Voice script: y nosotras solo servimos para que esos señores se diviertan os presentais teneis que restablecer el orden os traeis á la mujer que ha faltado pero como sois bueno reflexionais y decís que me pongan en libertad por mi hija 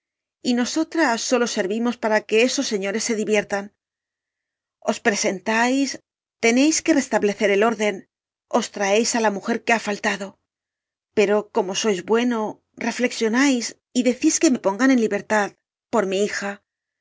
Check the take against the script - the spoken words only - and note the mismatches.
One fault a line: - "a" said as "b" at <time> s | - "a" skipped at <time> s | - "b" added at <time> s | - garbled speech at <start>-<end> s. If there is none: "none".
none